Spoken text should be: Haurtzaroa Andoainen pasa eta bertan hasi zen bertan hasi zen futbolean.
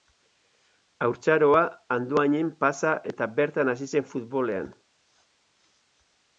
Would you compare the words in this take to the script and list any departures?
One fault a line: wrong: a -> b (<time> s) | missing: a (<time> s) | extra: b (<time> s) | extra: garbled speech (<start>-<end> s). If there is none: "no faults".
missing: bertan hasi zen (4.1 s)